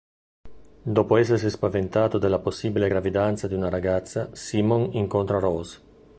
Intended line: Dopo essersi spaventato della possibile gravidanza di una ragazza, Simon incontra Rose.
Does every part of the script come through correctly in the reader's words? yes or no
yes